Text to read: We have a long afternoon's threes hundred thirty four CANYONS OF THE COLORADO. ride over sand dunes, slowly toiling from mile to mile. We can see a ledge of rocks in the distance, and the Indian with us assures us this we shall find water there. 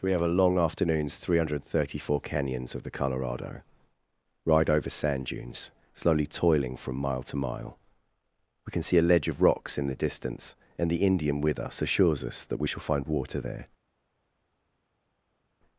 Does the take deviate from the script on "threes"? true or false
true